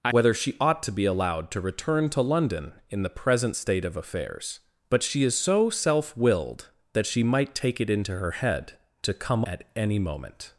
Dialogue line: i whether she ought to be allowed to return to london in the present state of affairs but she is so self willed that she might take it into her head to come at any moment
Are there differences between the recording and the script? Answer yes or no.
no